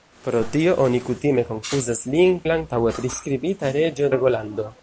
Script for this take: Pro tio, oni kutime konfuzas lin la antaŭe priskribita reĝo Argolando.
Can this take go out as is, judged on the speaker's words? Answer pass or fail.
pass